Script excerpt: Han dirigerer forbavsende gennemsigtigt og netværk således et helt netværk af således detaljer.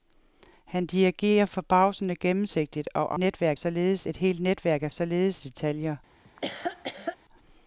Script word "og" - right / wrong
right